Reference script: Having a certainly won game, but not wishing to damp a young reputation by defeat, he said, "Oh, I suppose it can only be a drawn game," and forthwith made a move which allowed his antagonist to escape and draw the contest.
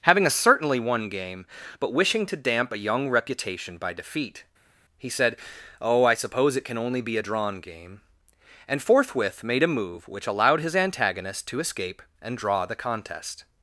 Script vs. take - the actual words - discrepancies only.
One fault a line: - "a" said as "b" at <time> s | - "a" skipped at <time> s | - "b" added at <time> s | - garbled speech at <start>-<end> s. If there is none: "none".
- "not" skipped at 1.9 s